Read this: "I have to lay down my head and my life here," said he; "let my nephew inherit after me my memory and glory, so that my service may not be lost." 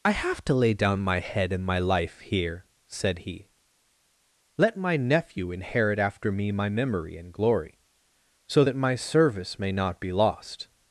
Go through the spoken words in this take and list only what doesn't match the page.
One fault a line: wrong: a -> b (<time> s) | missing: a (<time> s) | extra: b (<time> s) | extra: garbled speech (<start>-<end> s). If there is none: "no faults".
no faults